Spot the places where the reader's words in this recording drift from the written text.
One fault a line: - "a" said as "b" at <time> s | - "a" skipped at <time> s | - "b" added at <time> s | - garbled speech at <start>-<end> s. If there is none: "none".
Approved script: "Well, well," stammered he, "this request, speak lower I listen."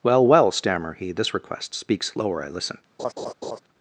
- "stammered" said as "stammer" at 0.5 s
- "speak" said as "speaks" at 1.8 s